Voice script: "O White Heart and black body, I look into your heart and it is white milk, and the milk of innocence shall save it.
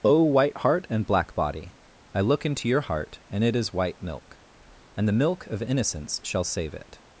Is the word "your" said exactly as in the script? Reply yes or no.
yes